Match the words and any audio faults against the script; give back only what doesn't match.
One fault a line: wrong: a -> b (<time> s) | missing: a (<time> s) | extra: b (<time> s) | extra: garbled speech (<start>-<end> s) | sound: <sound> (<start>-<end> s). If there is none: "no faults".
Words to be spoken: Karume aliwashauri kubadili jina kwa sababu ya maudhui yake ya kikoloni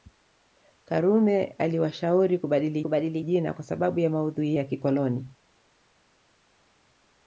extra: kubadili (2.8 s)
missing: yake (4.6 s)